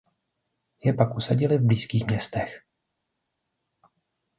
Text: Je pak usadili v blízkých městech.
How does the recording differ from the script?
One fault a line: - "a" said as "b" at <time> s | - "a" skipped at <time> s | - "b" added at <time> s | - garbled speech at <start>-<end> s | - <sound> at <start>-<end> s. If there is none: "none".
none